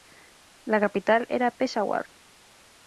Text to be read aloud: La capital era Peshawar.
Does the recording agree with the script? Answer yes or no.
yes